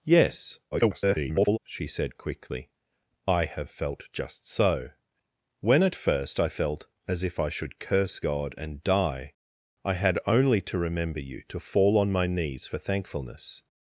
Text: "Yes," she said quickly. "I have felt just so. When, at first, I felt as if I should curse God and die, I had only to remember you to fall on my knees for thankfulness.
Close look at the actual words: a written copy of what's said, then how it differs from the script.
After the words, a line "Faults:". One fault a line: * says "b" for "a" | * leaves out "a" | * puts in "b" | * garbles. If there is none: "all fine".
"Yes," [garbled] she said quickly. "I have felt just so. When, at first, I felt as if I should curse God and die, I had only to remember you to fall on my knees for thankfulness.
Faults:
* garbles